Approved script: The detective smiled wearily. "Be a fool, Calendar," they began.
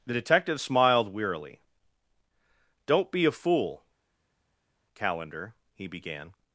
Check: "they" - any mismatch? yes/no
yes